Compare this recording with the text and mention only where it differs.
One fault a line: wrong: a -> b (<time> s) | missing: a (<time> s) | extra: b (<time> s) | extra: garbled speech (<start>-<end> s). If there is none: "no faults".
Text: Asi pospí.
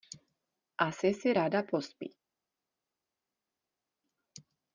extra: si ráda (1.1 s)